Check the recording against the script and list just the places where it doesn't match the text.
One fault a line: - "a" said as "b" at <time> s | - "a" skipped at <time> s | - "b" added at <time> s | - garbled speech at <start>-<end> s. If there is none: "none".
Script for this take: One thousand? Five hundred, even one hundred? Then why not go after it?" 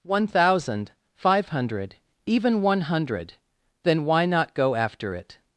none